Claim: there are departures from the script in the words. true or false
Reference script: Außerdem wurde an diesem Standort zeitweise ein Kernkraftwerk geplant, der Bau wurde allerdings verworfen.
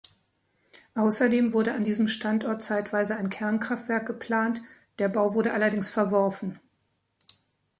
false